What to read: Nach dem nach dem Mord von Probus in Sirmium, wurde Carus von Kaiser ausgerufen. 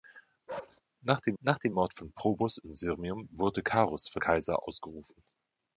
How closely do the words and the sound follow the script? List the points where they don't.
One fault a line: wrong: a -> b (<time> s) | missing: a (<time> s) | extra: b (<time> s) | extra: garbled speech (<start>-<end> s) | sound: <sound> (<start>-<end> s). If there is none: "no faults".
sound: bark (0.5-0.8 s)